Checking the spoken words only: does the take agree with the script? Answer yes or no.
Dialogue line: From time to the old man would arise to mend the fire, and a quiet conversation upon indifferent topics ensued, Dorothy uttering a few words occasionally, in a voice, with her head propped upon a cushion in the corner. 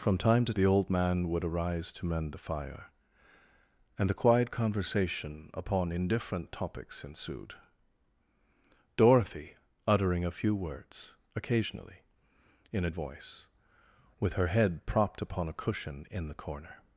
yes